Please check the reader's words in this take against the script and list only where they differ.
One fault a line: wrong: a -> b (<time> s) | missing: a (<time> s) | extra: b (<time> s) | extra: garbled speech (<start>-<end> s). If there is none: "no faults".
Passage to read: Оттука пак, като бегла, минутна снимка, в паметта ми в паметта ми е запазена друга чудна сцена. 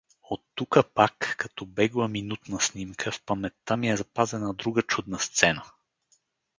missing: в паметта ми (3.9 s)